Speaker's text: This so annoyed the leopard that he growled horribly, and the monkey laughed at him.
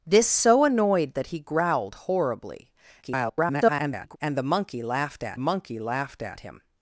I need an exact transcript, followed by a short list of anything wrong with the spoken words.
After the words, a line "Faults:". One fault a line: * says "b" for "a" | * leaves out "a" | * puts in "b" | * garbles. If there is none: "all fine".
This so annoyed that he growled horribly, [garbled] and the monkey laughed at monkey laughed at him.
Faults:
* leaves out "the leopard"
* garbles
* puts in "monkey laughed at"